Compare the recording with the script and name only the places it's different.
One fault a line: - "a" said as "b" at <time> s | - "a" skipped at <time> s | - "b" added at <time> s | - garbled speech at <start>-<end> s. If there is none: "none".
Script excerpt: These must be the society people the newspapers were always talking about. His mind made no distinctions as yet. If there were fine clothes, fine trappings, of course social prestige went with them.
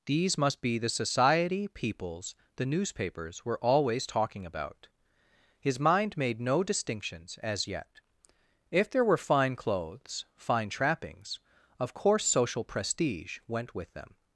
- "people" said as "peoples" at 1.7 s